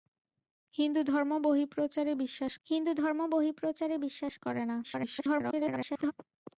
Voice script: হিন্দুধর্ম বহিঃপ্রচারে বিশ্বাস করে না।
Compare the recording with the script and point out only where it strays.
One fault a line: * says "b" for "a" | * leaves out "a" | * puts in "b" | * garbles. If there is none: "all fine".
* puts in "হিন্দুধর্ম বহিঃপ্রচারে বিশ্বাস"
* garbles